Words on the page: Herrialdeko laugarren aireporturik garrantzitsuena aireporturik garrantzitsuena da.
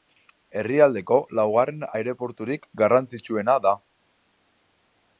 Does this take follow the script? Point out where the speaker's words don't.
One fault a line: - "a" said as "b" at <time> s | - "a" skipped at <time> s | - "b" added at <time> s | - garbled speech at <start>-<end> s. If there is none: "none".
- "aireporturik garrantzitsuena" skipped at 3.6 s